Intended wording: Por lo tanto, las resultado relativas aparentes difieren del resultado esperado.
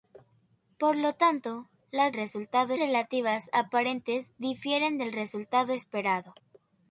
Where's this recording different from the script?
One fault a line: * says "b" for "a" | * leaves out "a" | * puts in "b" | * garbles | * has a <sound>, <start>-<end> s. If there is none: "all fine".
all fine